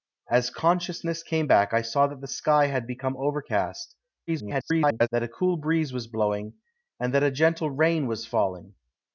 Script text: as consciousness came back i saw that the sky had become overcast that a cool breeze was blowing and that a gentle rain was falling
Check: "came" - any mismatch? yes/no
no